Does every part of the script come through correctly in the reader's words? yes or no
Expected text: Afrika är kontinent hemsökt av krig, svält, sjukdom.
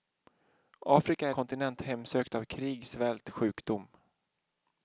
yes